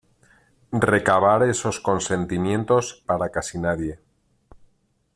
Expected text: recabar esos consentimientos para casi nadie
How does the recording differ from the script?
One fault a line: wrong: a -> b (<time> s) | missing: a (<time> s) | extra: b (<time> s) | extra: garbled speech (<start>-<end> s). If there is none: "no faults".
no faults